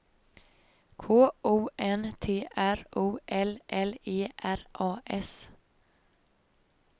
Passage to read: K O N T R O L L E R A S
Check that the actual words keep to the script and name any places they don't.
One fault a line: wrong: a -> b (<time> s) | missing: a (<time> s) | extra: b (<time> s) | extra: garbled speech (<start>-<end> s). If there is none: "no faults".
no faults